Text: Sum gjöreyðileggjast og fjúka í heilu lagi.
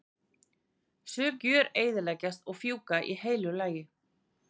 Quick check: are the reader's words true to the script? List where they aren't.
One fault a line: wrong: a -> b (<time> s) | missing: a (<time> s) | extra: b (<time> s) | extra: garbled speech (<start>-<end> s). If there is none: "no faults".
no faults